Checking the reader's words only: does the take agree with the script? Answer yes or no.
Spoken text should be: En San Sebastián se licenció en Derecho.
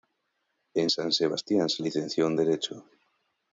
yes